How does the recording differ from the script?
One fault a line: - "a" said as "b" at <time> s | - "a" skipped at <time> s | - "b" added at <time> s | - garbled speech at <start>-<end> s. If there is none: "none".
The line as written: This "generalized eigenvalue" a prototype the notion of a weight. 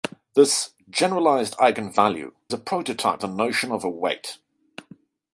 none